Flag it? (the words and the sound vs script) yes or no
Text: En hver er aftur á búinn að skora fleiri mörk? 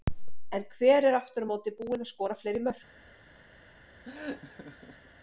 yes